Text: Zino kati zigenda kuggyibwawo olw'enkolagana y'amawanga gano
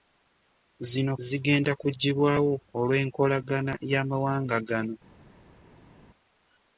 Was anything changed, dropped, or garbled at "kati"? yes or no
yes